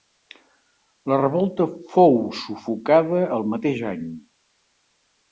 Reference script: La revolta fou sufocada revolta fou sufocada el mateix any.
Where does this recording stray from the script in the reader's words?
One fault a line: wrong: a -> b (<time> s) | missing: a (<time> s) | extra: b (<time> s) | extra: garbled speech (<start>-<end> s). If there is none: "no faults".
missing: revolta fou sufocada (3.2 s)